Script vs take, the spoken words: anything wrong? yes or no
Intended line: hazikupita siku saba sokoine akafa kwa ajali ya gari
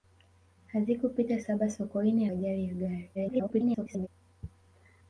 yes